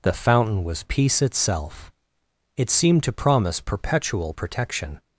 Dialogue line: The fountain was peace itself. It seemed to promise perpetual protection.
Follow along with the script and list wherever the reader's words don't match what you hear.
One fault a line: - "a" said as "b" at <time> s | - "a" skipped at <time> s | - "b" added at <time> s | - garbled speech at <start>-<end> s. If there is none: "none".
none